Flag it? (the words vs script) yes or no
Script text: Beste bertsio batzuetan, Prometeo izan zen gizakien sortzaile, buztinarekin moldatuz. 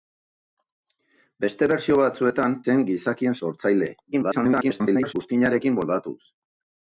yes